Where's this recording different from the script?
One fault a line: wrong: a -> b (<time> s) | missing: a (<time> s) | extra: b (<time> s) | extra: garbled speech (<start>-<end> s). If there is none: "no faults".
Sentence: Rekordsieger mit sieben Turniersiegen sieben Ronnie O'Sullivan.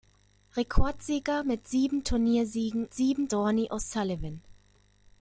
no faults